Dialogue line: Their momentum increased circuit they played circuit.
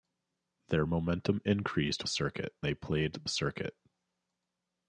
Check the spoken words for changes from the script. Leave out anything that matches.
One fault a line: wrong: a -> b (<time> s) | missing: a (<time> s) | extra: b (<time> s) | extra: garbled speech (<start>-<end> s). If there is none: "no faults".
no faults